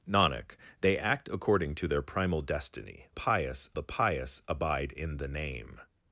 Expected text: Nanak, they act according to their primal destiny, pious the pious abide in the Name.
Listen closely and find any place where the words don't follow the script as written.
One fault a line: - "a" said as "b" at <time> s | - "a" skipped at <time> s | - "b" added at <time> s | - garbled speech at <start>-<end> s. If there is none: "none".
none